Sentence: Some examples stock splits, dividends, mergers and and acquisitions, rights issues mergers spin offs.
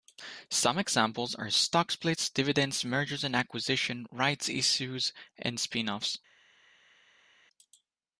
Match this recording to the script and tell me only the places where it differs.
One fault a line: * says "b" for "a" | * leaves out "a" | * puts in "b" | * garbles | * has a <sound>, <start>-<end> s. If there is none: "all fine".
* puts in "are"
* leaves out "and"
* says "and" for "mergers"